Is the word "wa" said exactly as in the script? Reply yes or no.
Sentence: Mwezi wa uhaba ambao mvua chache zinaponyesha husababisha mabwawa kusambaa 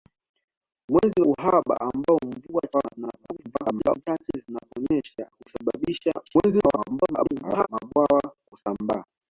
no